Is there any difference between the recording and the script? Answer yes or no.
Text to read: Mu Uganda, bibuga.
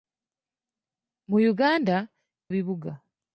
no